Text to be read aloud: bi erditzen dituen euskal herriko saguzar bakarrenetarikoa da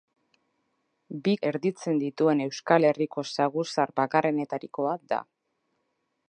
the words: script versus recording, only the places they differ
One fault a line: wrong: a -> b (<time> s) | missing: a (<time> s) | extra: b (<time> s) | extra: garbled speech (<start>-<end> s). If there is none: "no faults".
no faults